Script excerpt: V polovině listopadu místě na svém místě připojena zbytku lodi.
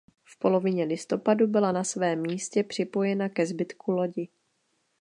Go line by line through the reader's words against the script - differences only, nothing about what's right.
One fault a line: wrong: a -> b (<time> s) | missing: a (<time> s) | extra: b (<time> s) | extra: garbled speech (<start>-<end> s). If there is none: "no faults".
wrong: místě -> byla (1.5 s)
extra: ke (3.3 s)